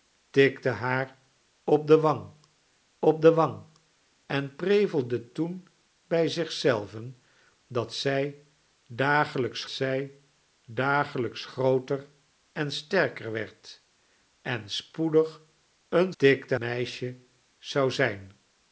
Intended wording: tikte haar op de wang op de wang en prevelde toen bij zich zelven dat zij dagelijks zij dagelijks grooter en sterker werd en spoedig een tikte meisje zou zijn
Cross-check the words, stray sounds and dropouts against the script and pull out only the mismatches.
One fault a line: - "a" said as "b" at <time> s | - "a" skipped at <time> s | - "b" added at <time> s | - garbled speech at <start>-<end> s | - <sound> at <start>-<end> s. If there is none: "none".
none